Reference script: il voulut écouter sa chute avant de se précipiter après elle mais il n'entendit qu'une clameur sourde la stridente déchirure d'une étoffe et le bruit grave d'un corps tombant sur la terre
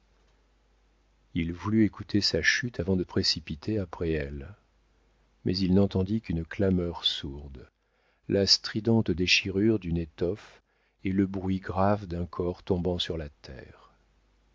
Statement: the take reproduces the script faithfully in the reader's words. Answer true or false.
false